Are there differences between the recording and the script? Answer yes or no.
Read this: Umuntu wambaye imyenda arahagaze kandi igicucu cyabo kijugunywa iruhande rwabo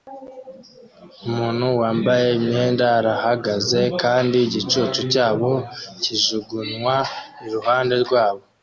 no